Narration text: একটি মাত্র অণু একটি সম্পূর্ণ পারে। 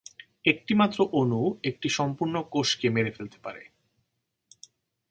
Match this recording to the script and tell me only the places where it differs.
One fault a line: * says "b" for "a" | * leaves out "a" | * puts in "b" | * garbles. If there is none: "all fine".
* puts in "কোষকে মেরে ফেলতে"